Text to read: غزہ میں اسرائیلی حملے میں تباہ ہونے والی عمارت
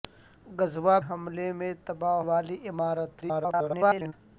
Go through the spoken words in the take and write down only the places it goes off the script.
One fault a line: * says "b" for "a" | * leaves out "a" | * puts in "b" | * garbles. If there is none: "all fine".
* leaves out "میں اسرائیلی"
* leaves out "ہونے"
* garbles